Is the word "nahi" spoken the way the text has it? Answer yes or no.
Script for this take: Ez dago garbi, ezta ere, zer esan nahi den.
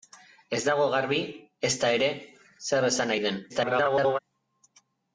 yes